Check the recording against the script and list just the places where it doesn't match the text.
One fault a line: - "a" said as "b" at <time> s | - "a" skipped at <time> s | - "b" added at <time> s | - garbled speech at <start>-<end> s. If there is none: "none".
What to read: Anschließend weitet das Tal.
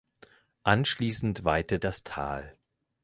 none